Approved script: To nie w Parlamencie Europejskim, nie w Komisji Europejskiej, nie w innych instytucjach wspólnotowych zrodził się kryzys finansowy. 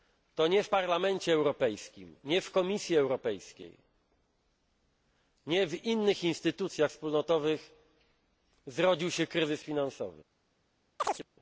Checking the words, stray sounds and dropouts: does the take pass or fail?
fail